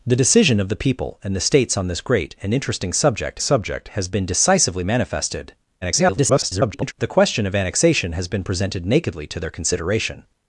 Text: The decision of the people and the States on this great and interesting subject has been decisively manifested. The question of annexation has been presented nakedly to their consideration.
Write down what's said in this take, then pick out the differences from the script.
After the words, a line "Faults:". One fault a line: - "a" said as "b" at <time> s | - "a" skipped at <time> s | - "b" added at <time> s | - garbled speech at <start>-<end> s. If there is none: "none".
The decision of the people and the States on this great and interesting subject subject has been decisively manifested. [garbled] The question of annexation has been presented nakedly to their consideration.
Faults:
- "subject" added at 3.4 s
- garbled speech at 5.8-6.9 s